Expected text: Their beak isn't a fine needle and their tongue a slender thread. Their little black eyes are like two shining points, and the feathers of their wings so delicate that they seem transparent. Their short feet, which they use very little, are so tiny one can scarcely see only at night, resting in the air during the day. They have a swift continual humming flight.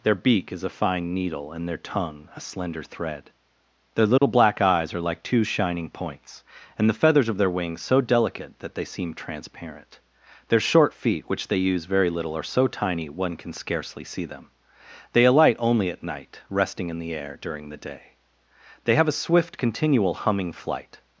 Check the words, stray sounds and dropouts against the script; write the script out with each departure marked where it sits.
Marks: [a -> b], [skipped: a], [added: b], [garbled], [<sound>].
Their beak [isn't -> is] a fine needle and their tongue a slender thread. Their little [dropout] black eyes are like two shining points, and the feathers of their wings so delicate that they seem transparent. Their short feet, which they use very little, are so tiny one can scarcely see [added: them They alight] only at night, resting in the air during the day. They have a swift continual humming flight.